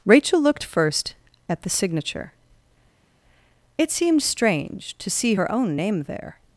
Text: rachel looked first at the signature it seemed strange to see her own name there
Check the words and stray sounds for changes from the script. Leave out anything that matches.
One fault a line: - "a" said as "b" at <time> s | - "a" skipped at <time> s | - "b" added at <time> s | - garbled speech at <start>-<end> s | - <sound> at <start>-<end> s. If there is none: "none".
none